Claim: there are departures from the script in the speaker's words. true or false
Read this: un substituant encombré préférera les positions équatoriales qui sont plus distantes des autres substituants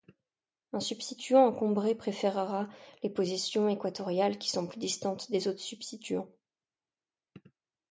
false